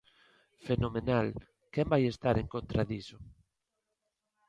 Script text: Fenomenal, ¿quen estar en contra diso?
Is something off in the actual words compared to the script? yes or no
yes